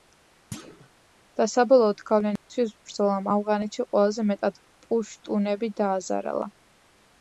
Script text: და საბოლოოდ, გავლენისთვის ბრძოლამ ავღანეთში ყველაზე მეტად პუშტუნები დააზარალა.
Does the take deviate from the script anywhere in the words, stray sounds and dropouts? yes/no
yes